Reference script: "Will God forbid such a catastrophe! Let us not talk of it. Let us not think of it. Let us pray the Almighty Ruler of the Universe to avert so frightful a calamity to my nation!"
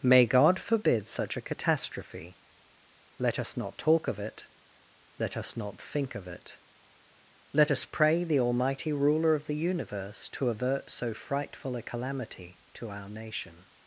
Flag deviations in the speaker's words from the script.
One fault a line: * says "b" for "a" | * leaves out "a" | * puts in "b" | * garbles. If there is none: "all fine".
* says "May" for "Will"
* says "our" for "my"